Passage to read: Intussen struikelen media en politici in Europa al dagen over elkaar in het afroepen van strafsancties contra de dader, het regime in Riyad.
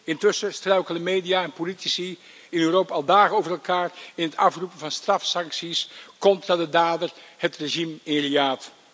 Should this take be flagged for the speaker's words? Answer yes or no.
no